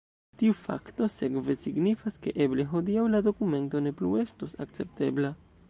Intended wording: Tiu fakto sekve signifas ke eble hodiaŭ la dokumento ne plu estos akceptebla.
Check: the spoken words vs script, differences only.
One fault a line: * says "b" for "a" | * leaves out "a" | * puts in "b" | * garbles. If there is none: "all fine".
all fine